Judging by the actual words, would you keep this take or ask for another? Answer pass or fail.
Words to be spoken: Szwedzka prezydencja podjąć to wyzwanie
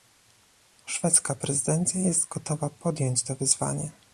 fail